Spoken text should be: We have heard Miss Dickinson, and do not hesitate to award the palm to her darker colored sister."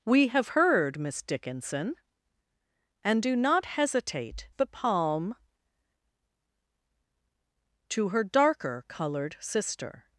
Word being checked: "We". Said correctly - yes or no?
yes